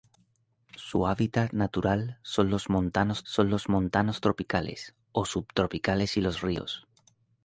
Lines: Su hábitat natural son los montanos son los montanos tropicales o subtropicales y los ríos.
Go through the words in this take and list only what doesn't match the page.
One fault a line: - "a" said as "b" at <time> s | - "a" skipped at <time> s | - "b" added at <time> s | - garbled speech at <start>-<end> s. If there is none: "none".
none